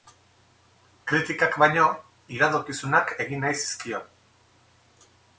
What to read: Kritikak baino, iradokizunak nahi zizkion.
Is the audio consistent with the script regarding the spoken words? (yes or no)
no